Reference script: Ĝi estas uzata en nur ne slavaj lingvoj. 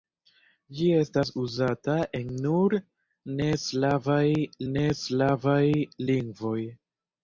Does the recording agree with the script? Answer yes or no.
no